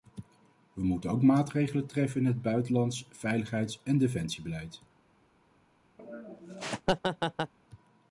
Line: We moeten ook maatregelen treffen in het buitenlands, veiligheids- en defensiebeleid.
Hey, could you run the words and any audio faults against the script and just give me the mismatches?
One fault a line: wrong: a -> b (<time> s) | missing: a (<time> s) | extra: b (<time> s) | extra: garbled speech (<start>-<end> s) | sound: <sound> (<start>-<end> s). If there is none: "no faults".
sound: laugh (6.0-7.5 s)